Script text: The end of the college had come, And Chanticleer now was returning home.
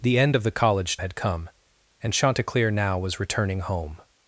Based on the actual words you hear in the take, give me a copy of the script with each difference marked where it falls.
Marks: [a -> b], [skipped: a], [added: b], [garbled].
The end of the college had come, And Chanticleer now was returning home.